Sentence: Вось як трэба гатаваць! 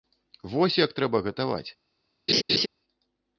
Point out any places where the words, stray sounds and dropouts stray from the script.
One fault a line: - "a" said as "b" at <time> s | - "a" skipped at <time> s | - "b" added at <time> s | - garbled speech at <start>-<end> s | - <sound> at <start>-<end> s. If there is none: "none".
- laugh at 2.3-2.7 s